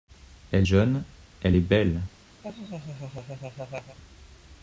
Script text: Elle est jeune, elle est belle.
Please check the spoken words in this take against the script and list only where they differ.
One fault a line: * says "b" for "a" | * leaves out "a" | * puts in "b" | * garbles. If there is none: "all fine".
* leaves out "est"